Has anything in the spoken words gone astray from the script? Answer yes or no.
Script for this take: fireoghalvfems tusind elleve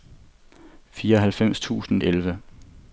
no